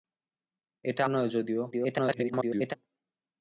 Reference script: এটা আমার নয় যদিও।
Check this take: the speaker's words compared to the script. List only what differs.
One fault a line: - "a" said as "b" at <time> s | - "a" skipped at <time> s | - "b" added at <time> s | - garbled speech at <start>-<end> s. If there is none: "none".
- "আমার" skipped at 1.0 s
- garbled speech at 1.7-2.7 s